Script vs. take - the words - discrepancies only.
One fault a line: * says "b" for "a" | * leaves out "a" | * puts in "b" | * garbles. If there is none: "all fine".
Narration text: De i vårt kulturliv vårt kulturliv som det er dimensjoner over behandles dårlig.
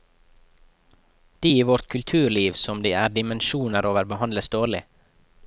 * leaves out "vårt kulturliv"